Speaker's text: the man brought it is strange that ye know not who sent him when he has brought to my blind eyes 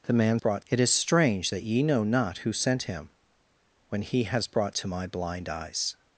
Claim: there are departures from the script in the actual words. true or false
false